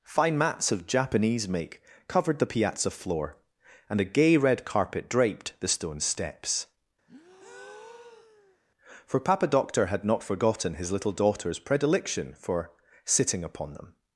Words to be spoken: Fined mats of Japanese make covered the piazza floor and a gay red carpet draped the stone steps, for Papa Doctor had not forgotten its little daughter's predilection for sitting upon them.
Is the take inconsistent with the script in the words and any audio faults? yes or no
yes